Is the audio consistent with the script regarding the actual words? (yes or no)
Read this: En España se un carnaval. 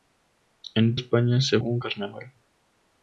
yes